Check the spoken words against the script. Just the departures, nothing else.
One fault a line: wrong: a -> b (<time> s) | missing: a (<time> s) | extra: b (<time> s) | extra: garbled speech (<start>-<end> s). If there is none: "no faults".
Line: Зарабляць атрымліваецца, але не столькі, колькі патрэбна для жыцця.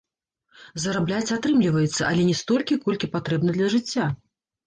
no faults